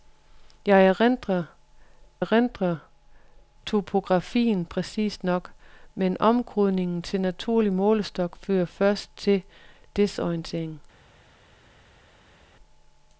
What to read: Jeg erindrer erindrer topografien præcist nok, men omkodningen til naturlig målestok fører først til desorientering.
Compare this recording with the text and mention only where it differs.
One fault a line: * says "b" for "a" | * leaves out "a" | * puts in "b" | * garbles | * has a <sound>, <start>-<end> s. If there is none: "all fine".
all fine